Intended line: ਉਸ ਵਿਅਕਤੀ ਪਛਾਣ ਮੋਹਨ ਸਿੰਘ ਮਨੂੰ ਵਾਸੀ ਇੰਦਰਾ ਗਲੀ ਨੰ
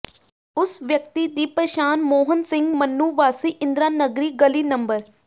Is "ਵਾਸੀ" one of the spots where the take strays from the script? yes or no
no